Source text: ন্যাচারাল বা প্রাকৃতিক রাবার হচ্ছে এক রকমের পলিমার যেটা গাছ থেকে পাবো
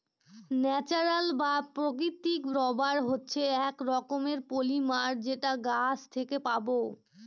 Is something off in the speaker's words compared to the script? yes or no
no